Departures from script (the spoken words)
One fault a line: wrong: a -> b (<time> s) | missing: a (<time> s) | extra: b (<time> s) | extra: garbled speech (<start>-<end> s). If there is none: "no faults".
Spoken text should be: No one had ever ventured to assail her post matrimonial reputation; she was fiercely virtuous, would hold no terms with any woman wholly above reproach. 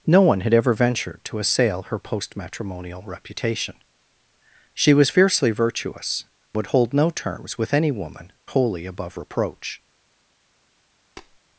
no faults